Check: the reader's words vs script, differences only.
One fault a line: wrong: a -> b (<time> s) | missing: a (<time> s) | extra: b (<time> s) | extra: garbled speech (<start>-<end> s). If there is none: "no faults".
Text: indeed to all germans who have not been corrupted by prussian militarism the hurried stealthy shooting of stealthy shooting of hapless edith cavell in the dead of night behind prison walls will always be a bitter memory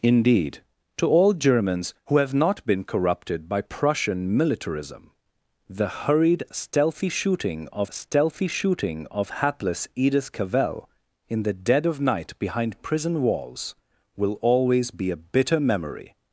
no faults